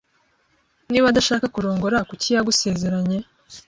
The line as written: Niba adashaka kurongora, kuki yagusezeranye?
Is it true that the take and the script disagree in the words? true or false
false